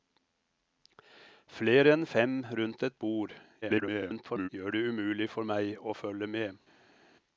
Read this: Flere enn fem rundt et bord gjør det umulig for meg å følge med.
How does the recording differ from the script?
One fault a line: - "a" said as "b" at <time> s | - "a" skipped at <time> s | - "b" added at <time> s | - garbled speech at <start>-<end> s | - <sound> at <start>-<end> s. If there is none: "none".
- garbled speech at 3.6-4.5 s